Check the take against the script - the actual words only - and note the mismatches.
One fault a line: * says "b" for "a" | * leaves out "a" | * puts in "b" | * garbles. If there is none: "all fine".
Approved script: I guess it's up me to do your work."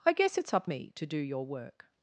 all fine